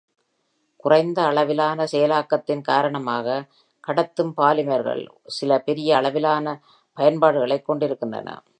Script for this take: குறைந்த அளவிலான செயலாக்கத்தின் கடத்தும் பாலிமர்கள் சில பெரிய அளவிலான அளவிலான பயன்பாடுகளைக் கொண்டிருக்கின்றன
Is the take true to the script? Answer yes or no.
no